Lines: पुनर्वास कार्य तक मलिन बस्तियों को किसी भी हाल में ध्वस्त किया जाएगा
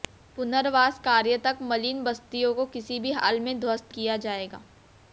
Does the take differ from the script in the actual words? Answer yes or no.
no